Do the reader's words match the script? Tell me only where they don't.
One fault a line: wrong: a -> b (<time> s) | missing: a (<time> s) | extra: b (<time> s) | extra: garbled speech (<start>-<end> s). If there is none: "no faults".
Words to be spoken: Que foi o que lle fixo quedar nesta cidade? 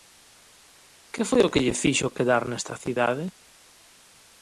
no faults